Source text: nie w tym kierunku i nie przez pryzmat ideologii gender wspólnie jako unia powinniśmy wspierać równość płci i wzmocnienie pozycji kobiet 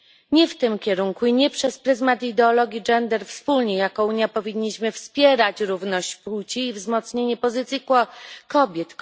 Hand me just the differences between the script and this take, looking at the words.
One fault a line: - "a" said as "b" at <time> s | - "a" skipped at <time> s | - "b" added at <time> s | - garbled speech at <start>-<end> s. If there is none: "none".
none